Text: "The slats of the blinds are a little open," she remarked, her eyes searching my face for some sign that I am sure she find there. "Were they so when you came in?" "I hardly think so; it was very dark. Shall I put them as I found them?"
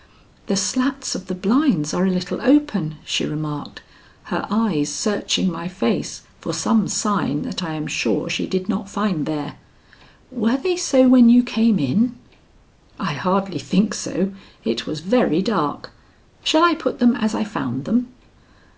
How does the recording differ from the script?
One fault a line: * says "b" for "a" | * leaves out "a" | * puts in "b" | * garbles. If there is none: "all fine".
* puts in "did not"